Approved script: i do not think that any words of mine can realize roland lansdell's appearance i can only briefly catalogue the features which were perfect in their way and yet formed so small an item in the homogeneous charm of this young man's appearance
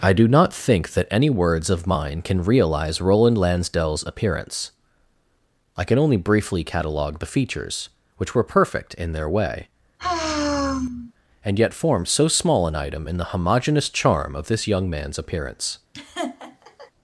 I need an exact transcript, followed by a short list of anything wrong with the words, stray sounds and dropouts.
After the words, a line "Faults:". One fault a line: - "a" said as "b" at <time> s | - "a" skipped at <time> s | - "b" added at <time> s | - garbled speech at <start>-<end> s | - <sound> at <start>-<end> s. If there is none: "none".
i do not think that any words of mine can realize roland lansdell's appearance i can only briefly catalogue the features which were perfect in their way and yet formed so small an item in the homogeneous charm of this young man's appearance
Faults:
- sigh at 10.0-11.1 s
- laugh at 15.9-16.9 s